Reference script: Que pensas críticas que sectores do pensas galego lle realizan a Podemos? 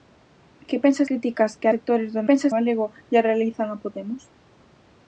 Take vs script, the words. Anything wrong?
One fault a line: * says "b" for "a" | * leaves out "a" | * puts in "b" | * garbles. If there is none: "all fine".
all fine